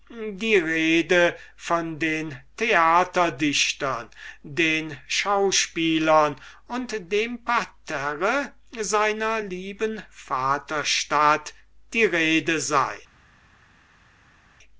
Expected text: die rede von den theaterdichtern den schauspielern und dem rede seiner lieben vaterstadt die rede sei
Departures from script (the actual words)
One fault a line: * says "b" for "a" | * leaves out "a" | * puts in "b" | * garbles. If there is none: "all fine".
* says "parterre" for "rede"